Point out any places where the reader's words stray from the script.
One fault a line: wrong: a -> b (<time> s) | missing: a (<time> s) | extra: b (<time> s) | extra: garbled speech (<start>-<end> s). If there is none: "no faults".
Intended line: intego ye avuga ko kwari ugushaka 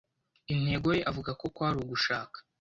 no faults